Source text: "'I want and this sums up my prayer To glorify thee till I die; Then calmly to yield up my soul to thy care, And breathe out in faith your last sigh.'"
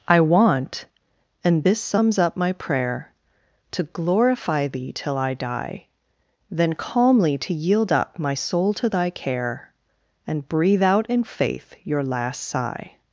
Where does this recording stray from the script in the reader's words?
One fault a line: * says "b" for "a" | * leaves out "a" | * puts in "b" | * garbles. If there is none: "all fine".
all fine